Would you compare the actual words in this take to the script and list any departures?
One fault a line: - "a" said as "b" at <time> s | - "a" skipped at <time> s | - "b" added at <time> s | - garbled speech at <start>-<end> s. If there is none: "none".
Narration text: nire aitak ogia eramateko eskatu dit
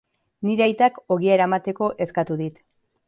none